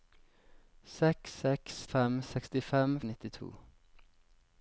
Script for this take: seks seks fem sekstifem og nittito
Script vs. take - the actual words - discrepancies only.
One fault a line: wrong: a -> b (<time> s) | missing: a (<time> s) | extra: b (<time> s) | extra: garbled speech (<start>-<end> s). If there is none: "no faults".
no faults